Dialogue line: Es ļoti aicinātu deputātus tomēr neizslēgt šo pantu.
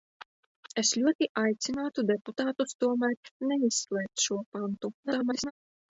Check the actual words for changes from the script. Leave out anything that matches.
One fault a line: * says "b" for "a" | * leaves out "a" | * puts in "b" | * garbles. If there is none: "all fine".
* garbles